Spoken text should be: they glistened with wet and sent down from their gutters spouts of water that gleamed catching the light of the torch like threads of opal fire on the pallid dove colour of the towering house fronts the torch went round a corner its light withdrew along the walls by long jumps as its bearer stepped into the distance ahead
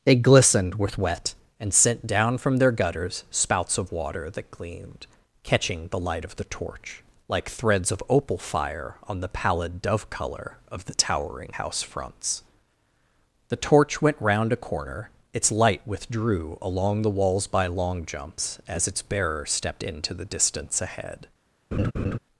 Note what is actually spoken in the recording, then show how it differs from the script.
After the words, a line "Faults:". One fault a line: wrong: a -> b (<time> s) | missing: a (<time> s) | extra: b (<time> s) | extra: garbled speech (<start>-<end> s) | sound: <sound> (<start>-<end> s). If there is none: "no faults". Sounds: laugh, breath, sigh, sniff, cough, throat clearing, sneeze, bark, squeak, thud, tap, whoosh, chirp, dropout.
they glistened with wet and sent down from their gutters spouts of water that gleamed catching the light of the torch like threads of opal fire on the pallid dove colour of the towering house fronts the torch went round a corner its light withdrew along the walls by long jumps as its bearer stepped into the distance ahead
Faults:
sound: laugh (21.7-22.2 s)